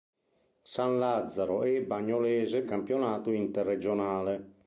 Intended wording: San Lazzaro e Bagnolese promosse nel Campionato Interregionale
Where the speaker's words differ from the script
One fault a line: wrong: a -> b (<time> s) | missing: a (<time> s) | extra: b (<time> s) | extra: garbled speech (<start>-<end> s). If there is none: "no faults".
missing: promosse nel (2.6 s)